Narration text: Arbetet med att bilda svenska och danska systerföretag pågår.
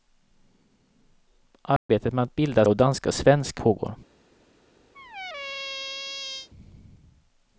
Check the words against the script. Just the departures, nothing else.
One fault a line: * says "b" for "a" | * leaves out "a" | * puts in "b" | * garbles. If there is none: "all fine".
* leaves out "svenska"
* says "svenska" for "systerföretag"